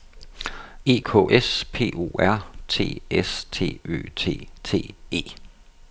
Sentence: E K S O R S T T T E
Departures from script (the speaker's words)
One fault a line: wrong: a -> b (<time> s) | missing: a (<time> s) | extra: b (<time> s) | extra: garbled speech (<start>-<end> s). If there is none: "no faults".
extra: P (1.7 s)
extra: T (2.7 s)
extra: Ø (3.9 s)